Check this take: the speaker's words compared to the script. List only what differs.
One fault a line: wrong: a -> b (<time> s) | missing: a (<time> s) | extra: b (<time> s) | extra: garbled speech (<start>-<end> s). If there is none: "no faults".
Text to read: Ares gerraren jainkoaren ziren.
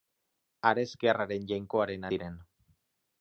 no faults